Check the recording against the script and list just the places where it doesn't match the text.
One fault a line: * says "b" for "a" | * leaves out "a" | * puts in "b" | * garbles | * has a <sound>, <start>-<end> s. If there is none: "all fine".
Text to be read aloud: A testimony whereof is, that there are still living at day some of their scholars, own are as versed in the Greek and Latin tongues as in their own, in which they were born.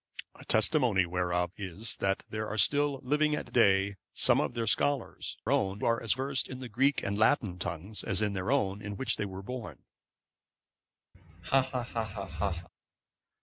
* has a laugh, 11.1-12.7 s